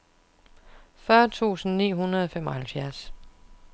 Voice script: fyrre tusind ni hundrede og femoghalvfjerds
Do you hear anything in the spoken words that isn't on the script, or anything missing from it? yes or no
no